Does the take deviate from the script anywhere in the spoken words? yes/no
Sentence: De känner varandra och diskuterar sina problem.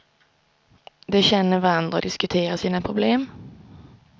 no